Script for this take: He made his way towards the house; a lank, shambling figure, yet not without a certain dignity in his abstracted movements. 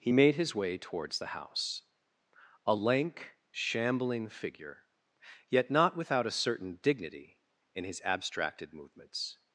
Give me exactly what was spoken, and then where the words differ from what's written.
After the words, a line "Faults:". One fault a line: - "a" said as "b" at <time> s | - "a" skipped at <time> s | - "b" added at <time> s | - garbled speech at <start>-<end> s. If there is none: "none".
He made his way towards the house; a lank, shambling figure, yet not without a certain dignity in his abstracted movements.
Faults:
none